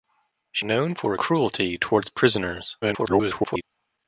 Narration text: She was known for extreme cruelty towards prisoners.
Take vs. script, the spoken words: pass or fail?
fail